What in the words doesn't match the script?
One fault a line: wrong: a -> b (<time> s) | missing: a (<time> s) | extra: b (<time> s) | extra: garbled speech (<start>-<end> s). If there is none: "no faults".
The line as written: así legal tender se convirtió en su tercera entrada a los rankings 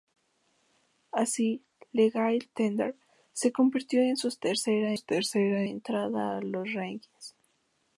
extra: tercera (4.9 s)